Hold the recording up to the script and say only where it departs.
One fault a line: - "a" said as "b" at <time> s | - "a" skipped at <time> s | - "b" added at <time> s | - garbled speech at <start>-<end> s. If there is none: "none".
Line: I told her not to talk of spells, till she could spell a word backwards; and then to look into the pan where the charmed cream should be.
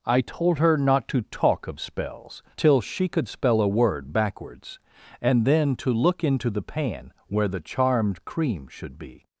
none